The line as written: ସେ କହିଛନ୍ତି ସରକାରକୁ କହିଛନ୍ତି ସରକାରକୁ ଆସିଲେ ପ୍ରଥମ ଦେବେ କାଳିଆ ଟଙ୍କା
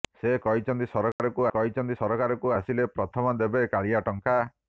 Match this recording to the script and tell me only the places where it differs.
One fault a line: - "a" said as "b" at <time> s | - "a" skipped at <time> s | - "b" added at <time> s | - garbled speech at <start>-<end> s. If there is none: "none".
none